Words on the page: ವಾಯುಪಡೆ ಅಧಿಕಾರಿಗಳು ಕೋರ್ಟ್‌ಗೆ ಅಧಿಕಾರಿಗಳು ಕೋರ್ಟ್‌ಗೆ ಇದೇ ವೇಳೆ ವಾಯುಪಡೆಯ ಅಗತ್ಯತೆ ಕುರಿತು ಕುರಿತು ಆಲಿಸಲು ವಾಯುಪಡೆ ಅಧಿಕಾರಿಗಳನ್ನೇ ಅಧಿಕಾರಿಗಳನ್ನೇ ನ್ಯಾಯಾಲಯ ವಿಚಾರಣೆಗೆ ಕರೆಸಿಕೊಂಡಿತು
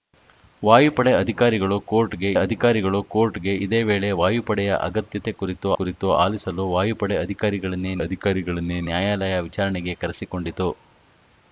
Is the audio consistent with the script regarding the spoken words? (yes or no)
yes